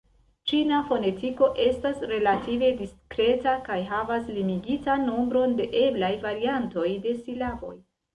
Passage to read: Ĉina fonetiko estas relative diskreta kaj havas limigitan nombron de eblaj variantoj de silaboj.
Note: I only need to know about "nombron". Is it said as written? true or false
true